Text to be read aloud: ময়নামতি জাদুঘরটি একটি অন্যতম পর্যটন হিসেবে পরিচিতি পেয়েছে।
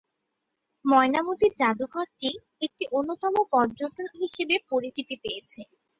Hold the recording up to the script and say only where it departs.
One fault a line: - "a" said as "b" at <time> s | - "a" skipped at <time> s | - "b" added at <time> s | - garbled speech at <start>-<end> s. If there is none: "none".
none